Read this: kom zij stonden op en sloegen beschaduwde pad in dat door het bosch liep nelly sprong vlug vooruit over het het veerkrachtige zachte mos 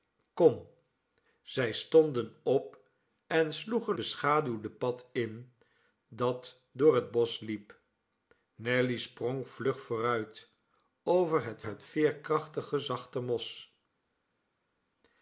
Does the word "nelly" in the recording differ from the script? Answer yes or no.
no